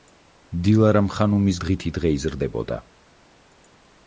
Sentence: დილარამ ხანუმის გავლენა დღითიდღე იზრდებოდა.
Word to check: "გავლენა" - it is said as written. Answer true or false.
false